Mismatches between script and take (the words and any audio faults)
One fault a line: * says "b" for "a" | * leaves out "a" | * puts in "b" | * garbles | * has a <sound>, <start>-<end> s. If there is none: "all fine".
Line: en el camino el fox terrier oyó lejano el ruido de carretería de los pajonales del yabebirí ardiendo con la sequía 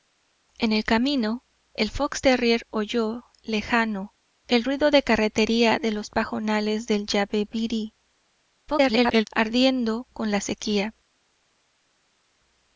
* garbles